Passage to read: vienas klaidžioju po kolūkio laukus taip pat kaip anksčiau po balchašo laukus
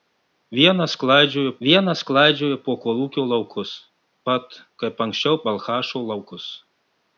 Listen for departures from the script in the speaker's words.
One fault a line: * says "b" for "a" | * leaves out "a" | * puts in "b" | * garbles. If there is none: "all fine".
* puts in "vienas klaidžioju"
* leaves out "taip"
* leaves out "po"